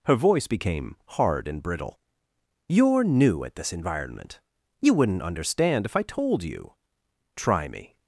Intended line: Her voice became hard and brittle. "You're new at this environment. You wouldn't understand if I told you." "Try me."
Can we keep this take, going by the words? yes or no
yes